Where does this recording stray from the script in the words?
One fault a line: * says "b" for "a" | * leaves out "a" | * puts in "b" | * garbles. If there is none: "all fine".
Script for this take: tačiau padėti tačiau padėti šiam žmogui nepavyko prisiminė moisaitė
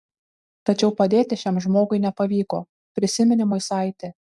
* leaves out "tačiau padėti"